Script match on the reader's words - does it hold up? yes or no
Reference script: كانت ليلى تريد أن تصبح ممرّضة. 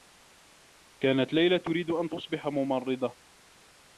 yes